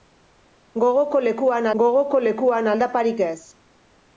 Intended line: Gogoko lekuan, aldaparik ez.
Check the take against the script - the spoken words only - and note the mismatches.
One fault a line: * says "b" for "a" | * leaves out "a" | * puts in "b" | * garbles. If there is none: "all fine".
* puts in "gogoko lekuan"